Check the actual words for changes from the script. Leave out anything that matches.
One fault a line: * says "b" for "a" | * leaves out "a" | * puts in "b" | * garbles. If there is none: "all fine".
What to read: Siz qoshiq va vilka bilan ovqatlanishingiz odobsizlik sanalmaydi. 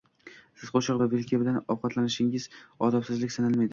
all fine